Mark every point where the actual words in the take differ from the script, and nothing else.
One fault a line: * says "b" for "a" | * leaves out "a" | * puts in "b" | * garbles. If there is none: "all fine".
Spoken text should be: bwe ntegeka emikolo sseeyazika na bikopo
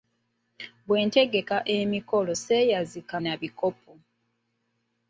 all fine